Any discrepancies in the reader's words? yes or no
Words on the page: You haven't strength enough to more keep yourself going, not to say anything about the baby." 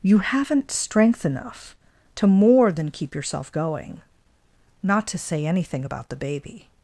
yes